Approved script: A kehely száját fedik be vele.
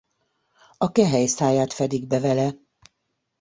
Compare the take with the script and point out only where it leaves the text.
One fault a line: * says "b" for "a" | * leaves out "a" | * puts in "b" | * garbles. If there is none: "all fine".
all fine